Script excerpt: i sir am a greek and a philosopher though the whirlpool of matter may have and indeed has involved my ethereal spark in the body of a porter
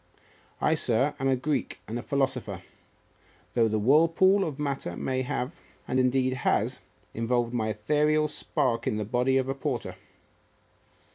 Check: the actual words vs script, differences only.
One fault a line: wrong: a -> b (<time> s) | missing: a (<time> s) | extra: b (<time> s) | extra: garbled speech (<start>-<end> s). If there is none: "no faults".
no faults